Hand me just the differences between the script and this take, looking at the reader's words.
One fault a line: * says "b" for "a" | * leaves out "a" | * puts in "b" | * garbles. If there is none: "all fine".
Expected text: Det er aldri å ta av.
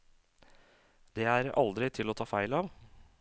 * puts in "til"
* puts in "feil"